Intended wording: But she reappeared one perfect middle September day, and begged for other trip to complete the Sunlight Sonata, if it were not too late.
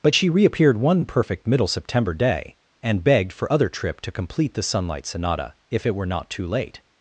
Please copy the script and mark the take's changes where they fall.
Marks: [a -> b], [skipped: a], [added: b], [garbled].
But she reappeared one perfect middle September day, and begged for other trip to complete the Sunlight Sonata, if it were not too late.